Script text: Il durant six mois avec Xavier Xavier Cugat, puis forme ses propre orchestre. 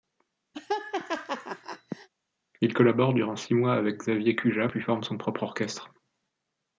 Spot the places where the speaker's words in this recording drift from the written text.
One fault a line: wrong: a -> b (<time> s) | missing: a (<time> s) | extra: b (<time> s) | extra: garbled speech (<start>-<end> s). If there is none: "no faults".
extra: collabore (2.7 s)
missing: Xavier (4.4 s)
wrong: ses -> son (5.0 s)